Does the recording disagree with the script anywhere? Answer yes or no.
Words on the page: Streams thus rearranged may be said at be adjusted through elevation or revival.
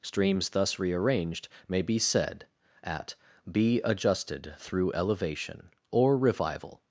no